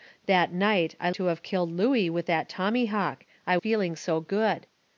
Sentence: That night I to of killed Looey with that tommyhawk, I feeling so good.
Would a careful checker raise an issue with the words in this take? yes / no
no